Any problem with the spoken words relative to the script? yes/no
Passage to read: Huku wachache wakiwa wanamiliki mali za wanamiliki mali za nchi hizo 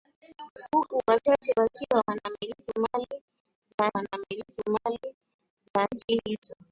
no